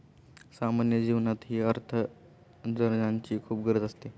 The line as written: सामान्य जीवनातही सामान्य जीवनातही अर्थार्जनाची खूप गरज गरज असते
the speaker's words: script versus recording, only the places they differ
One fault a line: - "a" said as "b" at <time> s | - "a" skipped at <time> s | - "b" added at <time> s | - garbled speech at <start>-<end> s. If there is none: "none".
- "सामान्य जीवनातही" skipped at 1.6 s
- "गरज" skipped at 3.8 s